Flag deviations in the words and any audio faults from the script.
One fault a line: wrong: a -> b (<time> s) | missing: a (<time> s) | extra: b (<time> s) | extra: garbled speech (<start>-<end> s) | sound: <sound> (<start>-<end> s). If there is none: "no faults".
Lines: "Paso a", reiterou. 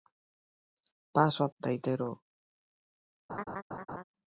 sound: laugh (3.3-4.0 s)